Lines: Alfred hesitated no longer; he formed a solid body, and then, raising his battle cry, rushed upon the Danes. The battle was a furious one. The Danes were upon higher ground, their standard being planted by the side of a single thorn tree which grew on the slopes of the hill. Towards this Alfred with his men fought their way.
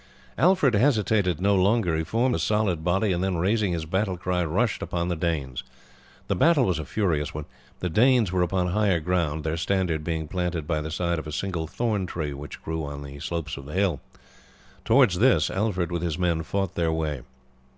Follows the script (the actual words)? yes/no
yes